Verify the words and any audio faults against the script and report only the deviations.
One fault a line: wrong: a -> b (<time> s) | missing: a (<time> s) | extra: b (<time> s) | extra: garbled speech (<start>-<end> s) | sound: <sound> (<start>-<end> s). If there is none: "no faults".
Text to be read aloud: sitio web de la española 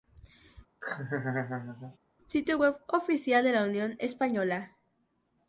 sound: laugh (0.8-2.0 s)
extra: oficial (2.9 s)
extra: unión (3.6 s)